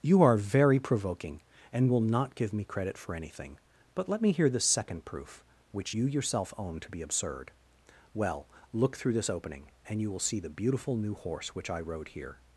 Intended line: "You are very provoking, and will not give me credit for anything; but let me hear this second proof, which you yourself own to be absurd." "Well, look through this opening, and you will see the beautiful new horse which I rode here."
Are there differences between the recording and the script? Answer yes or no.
yes